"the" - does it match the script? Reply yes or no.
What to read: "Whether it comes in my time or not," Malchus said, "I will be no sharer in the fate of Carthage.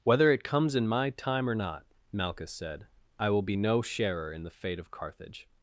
yes